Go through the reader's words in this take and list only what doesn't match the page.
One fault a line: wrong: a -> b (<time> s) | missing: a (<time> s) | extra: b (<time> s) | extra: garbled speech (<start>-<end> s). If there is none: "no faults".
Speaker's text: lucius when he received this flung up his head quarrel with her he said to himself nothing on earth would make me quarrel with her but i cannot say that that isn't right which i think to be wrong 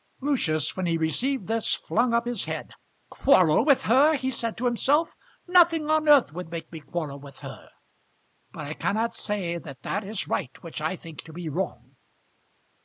wrong: isn't -> is (10.0 s)